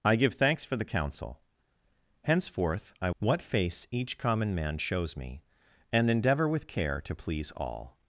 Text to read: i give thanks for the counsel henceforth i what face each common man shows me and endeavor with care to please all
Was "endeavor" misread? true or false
false